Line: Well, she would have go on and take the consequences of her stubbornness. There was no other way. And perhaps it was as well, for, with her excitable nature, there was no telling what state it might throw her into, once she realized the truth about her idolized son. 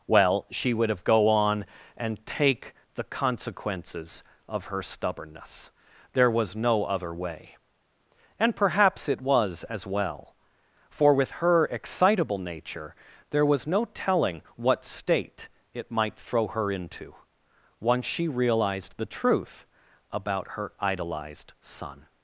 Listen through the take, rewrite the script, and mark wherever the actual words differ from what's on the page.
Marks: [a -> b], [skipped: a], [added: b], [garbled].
Well, she would have go on and take the consequences of her stubbornness. There was no other way. And perhaps it was as well, for, with her excitable nature, there was no telling what state it might throw her into, once she realized the truth about her idolized son.